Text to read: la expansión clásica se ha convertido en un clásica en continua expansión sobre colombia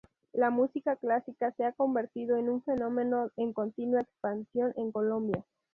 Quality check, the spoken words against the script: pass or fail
fail